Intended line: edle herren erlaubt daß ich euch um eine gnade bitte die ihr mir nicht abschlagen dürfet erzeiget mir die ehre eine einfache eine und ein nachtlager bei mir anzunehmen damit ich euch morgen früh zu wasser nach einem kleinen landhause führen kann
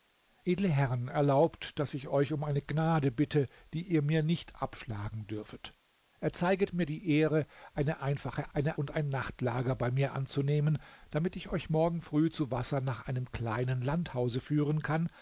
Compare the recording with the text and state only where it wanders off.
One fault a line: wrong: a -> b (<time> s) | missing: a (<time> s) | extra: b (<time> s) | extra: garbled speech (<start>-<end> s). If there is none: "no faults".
no faults